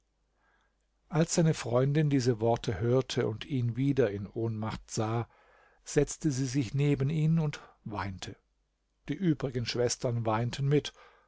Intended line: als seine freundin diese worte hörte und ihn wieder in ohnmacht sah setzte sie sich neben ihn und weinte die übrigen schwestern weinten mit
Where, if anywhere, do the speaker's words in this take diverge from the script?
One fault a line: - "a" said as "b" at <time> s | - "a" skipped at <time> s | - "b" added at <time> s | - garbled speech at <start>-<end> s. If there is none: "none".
none